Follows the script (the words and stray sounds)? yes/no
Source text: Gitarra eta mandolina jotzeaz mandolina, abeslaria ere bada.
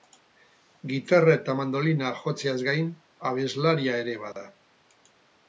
no